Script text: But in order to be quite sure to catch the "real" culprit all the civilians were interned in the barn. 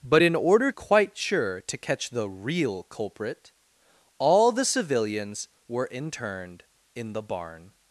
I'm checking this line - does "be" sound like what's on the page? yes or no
no